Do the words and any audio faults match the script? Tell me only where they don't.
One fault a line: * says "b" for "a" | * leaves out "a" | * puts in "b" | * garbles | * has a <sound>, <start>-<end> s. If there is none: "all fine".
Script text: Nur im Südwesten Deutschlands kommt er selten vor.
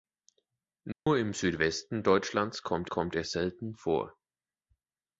* has a dropout, 0.9-1.1 s
* puts in "kommt"